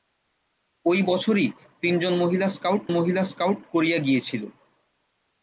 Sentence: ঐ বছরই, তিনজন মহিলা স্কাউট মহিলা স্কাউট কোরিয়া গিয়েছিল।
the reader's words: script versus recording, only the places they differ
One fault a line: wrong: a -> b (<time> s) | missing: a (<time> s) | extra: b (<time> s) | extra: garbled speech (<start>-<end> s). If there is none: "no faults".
no faults